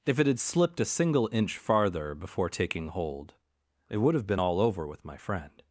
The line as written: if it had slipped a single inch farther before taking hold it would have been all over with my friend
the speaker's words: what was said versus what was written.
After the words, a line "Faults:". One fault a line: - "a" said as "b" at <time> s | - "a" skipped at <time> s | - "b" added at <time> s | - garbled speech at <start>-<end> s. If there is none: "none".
if it had slipped a single inch farther before taking hold it would have been all over with my friend
Faults:
none